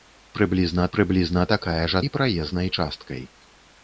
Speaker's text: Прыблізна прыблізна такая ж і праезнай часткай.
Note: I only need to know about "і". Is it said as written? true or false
true